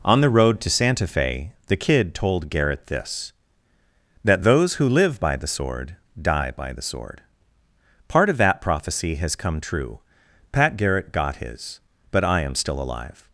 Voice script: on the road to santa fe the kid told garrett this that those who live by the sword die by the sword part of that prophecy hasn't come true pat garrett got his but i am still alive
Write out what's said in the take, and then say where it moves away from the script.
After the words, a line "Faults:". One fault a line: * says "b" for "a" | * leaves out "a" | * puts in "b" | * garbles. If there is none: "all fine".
on the road to santa fe the kid told garrett this that those who live by the sword die by the sword part of that prophecy has come true pat garrett got his but i am still alive
Faults:
* says "has" for "hasn't"